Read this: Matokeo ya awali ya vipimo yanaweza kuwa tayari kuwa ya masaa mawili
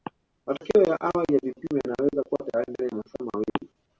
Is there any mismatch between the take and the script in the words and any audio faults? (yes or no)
yes